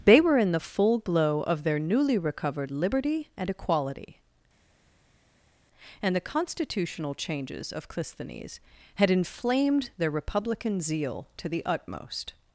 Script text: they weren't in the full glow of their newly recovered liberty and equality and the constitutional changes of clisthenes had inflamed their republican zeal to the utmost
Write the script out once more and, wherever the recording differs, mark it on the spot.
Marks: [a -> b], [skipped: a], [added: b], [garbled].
they [weren't -> were] in the full glow of their newly recovered liberty and equality and the constitutional changes of clisthenes had inflamed their republican zeal to the utmost